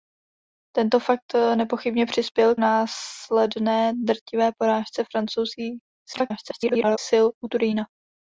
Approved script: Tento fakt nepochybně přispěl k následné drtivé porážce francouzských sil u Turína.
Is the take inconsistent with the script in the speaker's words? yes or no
yes